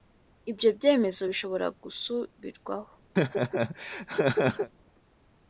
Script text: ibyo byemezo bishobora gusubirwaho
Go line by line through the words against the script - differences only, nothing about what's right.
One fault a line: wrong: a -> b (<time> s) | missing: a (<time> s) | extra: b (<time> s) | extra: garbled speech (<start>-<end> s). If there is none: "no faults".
no faults